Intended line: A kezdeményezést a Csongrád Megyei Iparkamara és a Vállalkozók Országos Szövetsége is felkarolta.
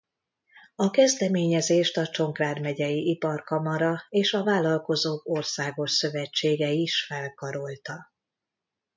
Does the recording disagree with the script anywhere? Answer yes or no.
no